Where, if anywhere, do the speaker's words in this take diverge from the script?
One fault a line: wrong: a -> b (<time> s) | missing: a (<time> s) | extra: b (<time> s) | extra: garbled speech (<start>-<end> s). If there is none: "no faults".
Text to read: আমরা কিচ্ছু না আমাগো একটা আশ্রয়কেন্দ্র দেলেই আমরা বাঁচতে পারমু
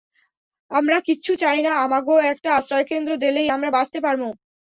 extra: চাই (1.4 s)